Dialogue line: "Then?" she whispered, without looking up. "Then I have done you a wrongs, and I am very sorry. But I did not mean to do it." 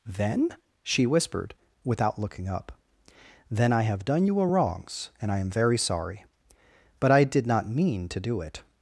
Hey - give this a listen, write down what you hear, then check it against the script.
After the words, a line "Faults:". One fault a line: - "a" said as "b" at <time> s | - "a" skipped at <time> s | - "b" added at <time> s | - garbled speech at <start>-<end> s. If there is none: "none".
"Then?" she whispered, without looking up. "Then I have done you a wrongs, and I am very sorry. But I did not mean to do it."
Faults:
none